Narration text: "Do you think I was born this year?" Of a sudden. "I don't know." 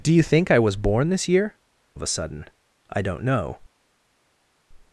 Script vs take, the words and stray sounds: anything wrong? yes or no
no